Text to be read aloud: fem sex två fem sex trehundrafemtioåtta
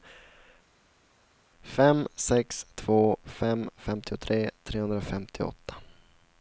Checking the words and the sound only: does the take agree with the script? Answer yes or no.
no